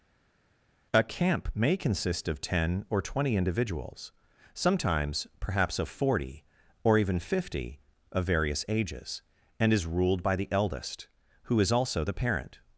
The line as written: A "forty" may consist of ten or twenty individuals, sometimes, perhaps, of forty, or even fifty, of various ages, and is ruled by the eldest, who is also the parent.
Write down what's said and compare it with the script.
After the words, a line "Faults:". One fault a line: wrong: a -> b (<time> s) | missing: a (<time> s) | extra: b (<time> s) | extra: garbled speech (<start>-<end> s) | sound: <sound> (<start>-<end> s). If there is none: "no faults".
A "camp" may consist of ten or twenty individuals, sometimes, perhaps, of forty, or even fifty, of various ages, and is ruled by the eldest, who is also the parent.
Faults:
wrong: forty -> camp (1.0 s)